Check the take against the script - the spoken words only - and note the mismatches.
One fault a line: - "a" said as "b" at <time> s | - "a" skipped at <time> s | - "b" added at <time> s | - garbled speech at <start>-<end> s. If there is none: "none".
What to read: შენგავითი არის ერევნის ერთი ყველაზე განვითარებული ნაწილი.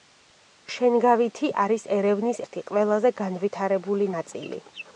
none